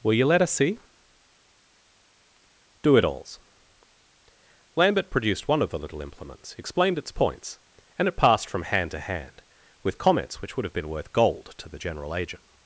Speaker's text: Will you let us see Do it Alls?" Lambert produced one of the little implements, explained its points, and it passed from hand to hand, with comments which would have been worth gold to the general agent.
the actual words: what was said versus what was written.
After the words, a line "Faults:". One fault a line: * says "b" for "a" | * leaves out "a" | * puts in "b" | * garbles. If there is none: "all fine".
Will you let us see Do it Alls?" Lambert produced one of the little implements, explained its points, and it passed from hand to hand, with comments which would have been worth gold to the general agent.
Faults:
all fine